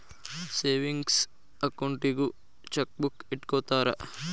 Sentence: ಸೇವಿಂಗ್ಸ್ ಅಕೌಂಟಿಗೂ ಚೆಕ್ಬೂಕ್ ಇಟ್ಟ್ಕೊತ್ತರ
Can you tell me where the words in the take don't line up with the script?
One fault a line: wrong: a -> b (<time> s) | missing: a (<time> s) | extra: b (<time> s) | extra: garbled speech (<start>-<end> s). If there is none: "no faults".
no faults